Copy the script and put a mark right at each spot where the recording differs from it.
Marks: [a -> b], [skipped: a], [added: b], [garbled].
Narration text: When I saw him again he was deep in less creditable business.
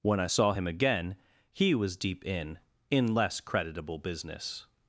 When I saw him again he was deep in [added: in] less creditable business.